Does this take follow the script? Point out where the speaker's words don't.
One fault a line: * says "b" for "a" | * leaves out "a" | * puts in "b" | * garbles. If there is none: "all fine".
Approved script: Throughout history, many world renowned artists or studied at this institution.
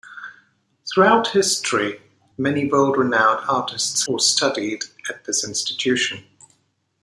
all fine